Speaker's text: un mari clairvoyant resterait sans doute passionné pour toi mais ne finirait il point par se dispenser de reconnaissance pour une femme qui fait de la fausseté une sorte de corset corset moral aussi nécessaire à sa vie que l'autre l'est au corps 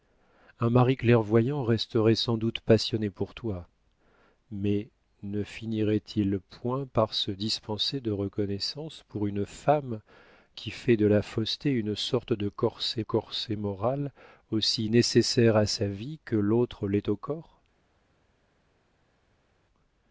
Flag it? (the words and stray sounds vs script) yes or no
no